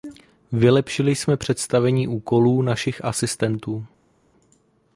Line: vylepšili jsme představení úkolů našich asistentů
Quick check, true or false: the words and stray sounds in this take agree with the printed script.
true